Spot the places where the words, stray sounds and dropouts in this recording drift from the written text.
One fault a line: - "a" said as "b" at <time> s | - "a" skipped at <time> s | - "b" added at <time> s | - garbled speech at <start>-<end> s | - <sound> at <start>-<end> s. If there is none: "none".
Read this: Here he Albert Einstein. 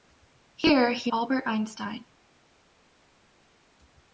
none